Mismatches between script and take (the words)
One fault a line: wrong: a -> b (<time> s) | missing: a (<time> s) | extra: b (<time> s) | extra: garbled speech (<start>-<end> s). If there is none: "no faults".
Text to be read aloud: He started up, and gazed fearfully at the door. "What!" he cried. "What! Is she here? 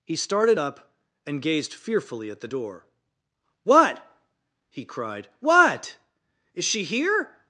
no faults